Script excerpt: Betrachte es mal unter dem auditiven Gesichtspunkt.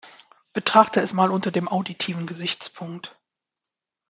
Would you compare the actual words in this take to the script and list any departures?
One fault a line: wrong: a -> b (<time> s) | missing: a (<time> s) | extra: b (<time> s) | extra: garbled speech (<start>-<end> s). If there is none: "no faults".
no faults